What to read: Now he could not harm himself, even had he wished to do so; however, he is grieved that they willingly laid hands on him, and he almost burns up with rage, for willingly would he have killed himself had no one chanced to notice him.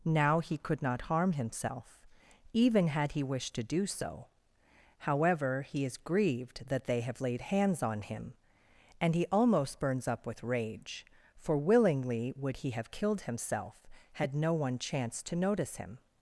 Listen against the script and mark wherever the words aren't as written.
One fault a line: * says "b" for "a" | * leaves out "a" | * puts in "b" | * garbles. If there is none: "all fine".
* says "have" for "willingly"